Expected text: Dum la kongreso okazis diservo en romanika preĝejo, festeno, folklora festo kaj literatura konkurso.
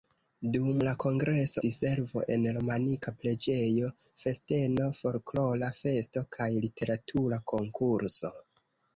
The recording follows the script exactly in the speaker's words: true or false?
false